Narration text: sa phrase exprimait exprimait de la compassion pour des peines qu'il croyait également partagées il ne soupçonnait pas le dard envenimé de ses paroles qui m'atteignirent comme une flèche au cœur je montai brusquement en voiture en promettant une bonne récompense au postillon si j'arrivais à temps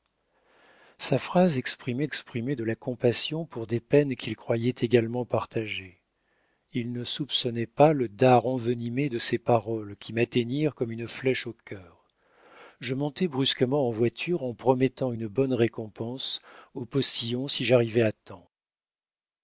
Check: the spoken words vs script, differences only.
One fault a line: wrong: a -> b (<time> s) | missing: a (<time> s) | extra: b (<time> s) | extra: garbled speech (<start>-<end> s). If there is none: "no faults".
no faults